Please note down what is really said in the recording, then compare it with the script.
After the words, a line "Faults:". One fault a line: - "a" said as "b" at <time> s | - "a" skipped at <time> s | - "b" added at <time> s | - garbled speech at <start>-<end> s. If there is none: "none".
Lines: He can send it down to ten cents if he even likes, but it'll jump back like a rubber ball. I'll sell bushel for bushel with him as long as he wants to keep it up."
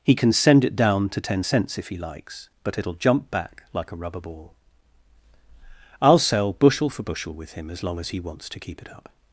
He can send it down to ten cents if he likes, but it'll jump back like a rubber ball. I'll sell bushel for bushel with him as long as he wants to keep it up."
Faults:
- "even" skipped at 2.0 s